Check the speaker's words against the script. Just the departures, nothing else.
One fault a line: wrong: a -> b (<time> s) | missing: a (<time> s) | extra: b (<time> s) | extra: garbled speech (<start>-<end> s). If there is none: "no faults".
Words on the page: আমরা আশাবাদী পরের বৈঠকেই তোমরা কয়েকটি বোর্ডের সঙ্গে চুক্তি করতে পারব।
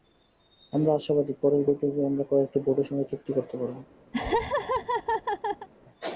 wrong: তোমরা -> আমরা (2.1 s)